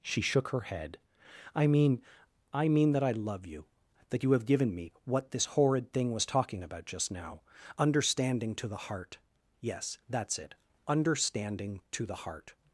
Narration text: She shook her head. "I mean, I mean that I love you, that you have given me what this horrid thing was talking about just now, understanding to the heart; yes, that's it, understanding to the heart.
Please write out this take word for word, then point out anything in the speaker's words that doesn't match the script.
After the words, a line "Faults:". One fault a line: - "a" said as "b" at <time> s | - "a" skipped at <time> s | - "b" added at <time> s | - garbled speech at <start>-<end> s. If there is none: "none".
She shook her head. "I mean, I mean that I love you, that you have given me what this horrid thing was talking about just now, understanding to the heart; yes, that's it, understanding to the heart.
Faults:
none